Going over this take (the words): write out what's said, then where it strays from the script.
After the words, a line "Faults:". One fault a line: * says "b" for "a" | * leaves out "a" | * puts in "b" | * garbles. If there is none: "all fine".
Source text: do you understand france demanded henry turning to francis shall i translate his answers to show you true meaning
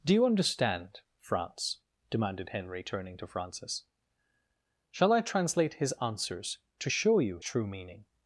do you understand france demanded henry turning to francis shall i translate his answers to show you true meaning
Faults:
all fine